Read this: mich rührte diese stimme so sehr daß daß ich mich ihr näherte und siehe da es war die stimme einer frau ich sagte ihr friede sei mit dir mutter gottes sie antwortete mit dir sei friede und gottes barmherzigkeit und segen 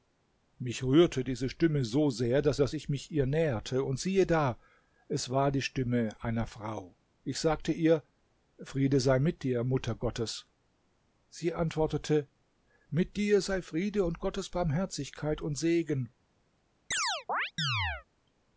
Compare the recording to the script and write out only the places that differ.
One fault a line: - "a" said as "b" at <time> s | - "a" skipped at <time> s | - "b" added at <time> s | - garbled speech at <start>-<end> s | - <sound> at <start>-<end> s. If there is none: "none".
- chirp at 16.9-18.1 s